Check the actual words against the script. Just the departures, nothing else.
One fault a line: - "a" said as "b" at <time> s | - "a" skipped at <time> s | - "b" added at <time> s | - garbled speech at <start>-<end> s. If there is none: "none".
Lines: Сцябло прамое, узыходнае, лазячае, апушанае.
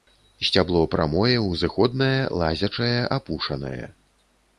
none